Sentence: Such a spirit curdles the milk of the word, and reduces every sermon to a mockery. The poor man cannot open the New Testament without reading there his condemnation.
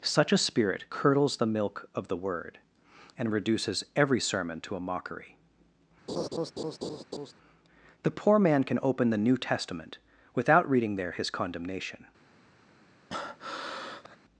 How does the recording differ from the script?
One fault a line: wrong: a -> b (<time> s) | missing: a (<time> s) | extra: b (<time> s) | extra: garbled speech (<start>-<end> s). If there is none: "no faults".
wrong: cannot -> can (8.7 s)